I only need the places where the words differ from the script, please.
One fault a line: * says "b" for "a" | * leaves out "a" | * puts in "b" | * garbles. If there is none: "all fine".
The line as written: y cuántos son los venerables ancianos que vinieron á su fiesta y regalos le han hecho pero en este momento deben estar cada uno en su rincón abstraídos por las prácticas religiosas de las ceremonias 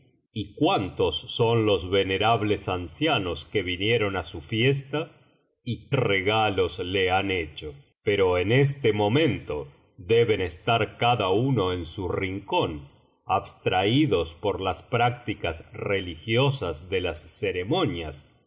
all fine